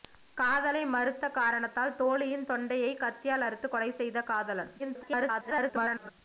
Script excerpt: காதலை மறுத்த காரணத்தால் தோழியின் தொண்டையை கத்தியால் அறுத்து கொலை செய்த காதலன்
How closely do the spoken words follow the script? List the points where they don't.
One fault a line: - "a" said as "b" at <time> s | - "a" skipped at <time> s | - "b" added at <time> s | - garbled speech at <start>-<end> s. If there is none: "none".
- garbled speech at 4.8-6.1 s